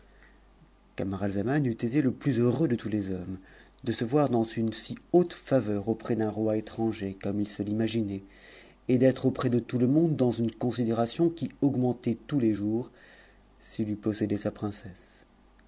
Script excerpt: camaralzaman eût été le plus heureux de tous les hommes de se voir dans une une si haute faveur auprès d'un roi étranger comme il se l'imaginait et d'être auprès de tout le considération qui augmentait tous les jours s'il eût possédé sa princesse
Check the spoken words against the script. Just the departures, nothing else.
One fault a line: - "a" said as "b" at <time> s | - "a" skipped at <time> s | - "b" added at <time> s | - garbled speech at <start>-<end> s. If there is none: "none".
- "une" skipped at 4.7 s
- "monde dans une" added at 9.9 s